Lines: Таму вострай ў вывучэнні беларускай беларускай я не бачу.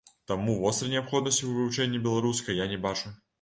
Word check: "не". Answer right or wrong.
right